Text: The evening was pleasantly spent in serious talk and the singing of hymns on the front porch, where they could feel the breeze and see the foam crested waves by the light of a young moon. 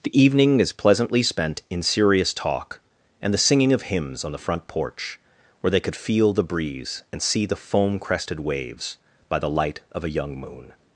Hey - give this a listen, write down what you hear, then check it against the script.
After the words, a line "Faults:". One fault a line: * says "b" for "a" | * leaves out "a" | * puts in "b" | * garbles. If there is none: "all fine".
The evening is pleasantly spent in serious talk and the singing of hymns on the front porch, where they could feel the breeze and see the foam crested waves by the light of a young moon.
Faults:
* says "is" for "was"